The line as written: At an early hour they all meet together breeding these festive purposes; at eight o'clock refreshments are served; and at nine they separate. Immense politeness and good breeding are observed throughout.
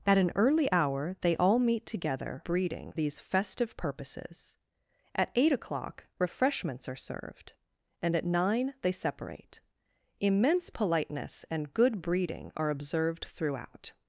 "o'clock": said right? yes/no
yes